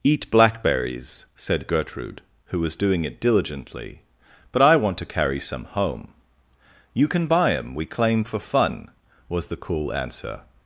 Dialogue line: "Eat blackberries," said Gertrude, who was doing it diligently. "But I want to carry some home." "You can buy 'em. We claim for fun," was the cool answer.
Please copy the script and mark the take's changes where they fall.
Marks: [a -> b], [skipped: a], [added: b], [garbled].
"Eat blackberries," said Gertrude, who was doing it diligently. "But I want to carry some home." "You can buy 'em. We claim for fun," was the cool answer.